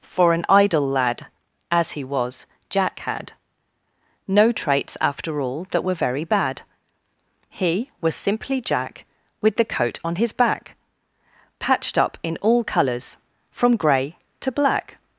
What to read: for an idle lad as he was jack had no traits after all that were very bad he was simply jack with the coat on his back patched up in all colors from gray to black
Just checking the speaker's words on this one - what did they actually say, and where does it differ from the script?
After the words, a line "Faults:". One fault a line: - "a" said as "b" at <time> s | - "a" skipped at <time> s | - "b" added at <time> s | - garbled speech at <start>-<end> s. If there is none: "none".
for an idle lad as he was jack had no traits after all that were very bad he was simply jack with the coat on his back patched up in all colors from gray to black
Faults:
none